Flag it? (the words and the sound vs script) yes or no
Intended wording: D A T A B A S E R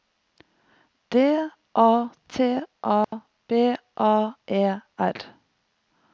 yes